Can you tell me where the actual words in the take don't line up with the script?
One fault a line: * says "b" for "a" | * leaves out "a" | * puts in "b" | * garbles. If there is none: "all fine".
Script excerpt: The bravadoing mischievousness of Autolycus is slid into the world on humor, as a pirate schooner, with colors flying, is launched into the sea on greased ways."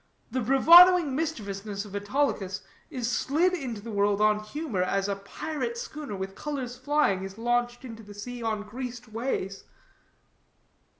all fine